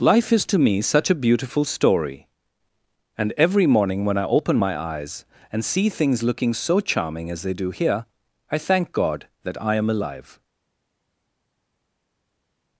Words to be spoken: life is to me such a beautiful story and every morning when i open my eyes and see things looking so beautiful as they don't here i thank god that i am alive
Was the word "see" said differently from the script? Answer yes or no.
no